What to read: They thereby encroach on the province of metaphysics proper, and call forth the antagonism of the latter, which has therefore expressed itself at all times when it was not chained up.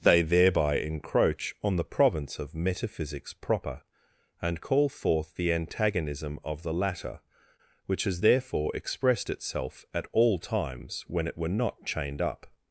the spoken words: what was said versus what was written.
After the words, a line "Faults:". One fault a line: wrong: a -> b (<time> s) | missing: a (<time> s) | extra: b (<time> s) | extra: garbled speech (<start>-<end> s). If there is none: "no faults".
They thereby encroach on the province of metaphysics proper, and call forth the antagonism of the latter, which has therefore expressed itself at all times when it were not chained up.
Faults:
wrong: was -> were (11.4 s)